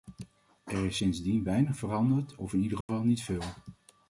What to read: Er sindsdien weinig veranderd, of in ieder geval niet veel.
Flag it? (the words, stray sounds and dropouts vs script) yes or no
yes